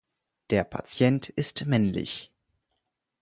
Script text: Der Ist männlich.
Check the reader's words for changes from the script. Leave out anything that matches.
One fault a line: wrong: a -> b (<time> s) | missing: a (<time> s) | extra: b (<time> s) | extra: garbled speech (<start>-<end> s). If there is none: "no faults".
extra: Patient (0.6 s)